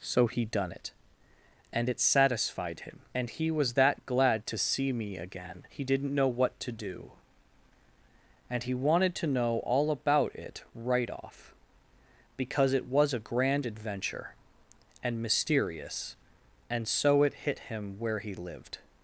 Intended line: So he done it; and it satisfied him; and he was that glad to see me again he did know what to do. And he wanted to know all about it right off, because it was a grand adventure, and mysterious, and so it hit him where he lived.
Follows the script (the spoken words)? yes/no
no